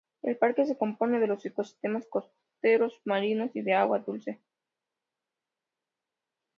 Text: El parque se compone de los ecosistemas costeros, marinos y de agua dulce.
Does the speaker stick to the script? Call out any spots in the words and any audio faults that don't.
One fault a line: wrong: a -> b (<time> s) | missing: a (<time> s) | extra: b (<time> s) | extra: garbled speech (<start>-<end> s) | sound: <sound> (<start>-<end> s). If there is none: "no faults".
no faults